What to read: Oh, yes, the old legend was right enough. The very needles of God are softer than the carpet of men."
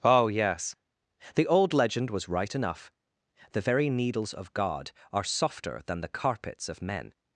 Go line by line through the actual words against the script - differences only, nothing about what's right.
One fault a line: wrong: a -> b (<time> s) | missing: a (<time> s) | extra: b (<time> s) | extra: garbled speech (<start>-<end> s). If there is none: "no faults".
wrong: carpet -> carpets (6.1 s)